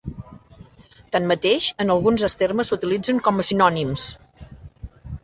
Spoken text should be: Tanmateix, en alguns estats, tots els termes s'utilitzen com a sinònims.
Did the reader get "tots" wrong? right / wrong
wrong